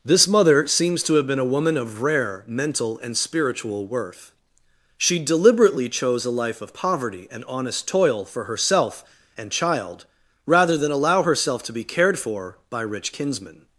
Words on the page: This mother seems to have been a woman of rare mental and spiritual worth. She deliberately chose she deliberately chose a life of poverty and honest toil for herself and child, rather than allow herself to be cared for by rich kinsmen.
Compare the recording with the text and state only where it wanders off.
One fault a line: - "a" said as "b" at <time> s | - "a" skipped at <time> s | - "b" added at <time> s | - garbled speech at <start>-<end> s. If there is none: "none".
- "she deliberately chose" skipped at 6.2 s